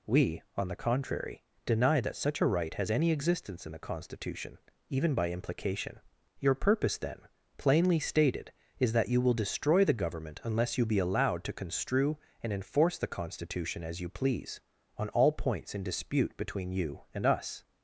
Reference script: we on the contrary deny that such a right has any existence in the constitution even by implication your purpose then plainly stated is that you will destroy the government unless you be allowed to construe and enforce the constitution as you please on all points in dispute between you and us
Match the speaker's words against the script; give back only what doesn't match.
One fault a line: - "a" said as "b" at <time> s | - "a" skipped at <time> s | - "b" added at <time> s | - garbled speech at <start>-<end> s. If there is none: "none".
none